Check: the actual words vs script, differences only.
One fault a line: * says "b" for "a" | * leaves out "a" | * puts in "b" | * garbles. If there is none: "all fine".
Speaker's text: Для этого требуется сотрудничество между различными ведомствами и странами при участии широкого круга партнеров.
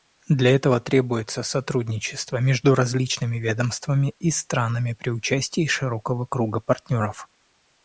all fine